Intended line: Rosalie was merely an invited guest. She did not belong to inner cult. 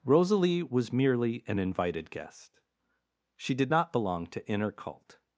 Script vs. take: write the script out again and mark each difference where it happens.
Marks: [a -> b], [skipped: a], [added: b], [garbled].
Rosalie was merely an invited guest. She did not belong to inner cult.